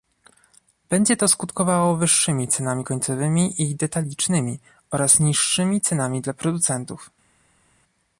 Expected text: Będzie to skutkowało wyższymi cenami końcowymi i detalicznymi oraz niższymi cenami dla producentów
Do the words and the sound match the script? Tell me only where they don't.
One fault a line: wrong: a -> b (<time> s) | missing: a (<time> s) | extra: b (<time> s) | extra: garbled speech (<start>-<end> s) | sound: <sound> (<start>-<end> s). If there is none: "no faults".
no faults